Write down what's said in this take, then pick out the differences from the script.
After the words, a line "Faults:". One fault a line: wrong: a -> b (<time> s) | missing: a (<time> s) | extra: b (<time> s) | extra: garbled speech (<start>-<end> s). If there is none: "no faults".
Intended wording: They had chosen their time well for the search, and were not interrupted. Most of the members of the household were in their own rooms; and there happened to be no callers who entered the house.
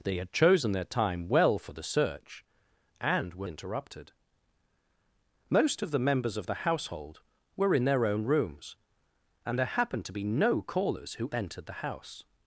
They had chosen their time well for the search, and were interrupted. Most of the members of the household were in their own rooms; and there happened to be no callers who entered the house.
Faults:
missing: not (3.5 s)